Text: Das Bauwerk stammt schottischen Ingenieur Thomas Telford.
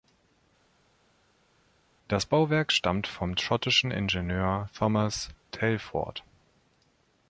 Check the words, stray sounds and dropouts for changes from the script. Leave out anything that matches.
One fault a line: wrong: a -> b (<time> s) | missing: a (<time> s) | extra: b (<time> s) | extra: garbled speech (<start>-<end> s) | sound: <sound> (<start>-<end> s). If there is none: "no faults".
extra: vom (3.1 s)